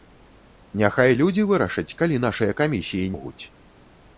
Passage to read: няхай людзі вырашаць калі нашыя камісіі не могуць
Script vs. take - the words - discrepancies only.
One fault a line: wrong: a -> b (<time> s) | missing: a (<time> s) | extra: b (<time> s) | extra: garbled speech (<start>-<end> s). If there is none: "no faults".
missing: не (3.1 s)